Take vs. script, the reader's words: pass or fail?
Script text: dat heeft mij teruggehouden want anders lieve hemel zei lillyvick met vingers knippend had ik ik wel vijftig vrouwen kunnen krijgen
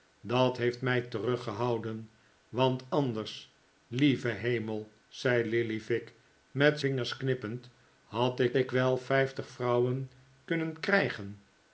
pass